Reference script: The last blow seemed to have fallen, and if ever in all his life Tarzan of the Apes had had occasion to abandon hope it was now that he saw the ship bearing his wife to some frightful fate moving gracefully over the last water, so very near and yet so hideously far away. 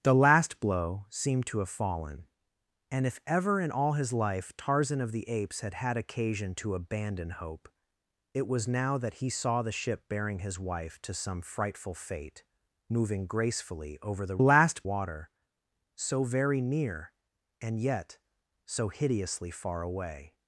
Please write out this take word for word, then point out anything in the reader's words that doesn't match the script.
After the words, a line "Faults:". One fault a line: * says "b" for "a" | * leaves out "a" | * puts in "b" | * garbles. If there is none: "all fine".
The last blow seemed to have fallen, and if ever in all his life Tarzan of the Apes had had occasion to abandon hope it was now that he saw the ship bearing his wife to some frightful fate moving gracefully over the last water, so very near and yet so hideously far away.
Faults:
all fine